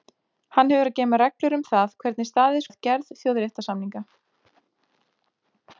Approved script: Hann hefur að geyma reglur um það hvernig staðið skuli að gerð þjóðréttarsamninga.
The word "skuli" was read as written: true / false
false